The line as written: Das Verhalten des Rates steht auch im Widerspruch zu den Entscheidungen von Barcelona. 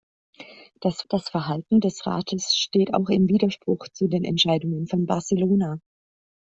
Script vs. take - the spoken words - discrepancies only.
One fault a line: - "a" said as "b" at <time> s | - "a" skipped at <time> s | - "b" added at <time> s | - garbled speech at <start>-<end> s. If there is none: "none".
- "das" added at 1.1 s